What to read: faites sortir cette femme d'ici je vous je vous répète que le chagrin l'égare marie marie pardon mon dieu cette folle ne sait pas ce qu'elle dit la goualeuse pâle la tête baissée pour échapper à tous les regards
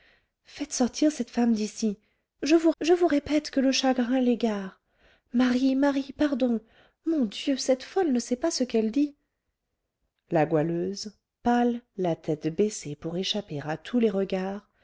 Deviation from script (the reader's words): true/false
false